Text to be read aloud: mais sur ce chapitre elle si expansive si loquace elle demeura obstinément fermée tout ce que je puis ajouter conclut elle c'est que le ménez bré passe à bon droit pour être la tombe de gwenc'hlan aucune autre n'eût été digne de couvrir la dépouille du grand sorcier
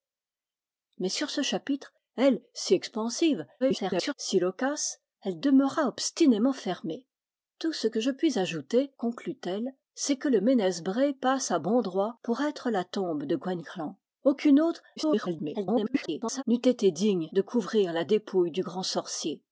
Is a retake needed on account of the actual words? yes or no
yes